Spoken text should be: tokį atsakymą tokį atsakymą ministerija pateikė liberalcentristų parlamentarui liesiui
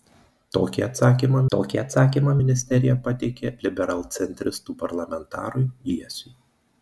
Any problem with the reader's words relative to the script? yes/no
no